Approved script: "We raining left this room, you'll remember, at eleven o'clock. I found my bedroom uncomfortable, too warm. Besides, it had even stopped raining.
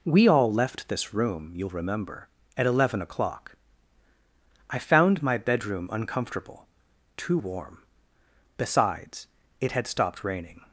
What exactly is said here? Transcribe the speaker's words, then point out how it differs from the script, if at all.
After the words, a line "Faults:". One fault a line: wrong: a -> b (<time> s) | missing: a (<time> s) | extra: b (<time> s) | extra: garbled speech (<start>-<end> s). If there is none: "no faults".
"We all left this room, you'll remember, at eleven o'clock. I found my bedroom uncomfortable, too warm. Besides, it had stopped raining.
Faults:
wrong: raining -> all (0.3 s)
missing: even (9.9 s)